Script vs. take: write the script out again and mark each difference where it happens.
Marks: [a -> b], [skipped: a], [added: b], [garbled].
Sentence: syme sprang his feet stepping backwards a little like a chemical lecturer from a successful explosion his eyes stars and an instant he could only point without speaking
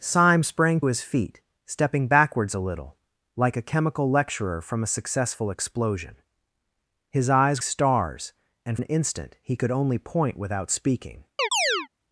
syme sprang his feet stepping backwards a little like a chemical lecturer from a successful explosion his eyes stars and an instant he could only point without speaking